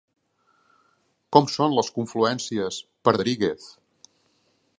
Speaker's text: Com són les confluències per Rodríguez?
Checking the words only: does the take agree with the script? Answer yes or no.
yes